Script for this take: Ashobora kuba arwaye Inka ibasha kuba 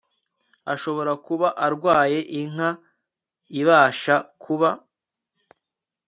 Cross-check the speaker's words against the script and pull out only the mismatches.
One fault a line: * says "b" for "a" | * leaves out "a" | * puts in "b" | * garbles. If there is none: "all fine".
all fine